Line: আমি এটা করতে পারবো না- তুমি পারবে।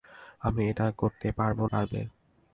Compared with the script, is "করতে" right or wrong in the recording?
right